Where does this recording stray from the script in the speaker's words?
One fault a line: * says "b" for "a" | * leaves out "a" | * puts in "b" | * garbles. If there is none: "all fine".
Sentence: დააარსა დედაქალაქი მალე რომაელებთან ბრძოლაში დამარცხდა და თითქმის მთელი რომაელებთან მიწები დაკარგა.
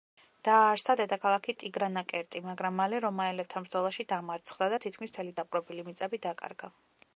* puts in "ტიგრანაკერტი მაგრამ"
* says "დაპყრობილი" for "რომაელებთან"